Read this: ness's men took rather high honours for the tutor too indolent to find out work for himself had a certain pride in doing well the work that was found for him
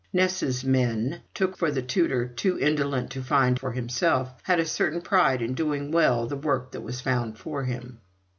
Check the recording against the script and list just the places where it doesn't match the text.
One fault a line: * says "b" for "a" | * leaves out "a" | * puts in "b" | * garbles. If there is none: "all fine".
* leaves out "rather high honours"
* leaves out "out work"